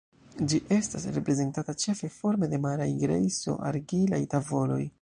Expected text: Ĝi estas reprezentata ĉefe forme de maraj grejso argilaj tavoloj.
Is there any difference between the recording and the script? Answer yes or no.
no